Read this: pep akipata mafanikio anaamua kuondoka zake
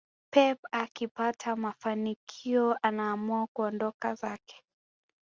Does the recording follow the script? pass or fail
pass